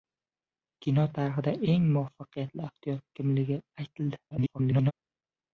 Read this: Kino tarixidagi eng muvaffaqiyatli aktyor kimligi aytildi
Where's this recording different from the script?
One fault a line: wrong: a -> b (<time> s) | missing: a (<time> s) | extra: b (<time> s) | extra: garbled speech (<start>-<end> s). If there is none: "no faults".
extra: garbled speech (4.3-4.9 s)